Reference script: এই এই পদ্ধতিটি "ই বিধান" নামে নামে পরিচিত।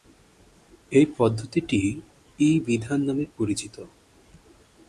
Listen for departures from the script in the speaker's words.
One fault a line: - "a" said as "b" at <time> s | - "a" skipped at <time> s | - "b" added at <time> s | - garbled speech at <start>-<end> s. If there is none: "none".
- "এই" skipped at 1.1 s
- "নামে" skipped at 3.2 s